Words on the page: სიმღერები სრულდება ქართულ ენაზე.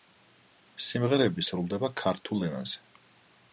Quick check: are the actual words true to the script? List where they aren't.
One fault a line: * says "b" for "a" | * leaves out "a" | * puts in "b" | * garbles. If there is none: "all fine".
all fine